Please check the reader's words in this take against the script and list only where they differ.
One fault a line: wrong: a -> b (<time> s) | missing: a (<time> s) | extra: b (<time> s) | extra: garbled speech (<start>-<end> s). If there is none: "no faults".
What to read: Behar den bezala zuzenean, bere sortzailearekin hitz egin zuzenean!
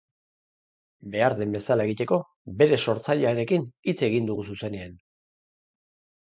wrong: zuzenean -> egiteko (1.9 s)
extra: dugu (4.3 s)